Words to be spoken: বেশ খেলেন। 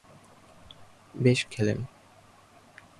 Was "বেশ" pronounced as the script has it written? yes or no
yes